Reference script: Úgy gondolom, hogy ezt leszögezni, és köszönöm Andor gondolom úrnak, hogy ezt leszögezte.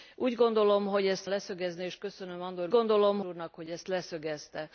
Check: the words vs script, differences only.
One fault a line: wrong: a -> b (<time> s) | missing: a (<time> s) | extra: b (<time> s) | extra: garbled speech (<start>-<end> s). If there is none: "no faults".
no faults